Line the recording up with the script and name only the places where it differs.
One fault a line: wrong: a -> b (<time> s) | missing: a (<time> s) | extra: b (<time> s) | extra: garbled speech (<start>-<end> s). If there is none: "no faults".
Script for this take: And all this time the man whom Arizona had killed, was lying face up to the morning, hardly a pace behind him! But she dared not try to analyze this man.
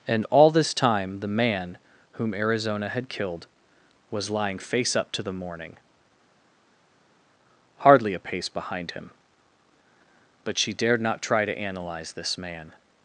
no faults